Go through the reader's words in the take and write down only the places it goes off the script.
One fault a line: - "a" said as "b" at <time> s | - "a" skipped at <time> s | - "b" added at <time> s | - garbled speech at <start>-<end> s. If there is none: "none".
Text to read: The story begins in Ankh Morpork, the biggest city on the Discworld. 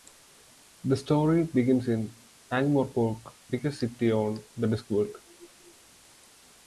- "the" skipped at 3.3 s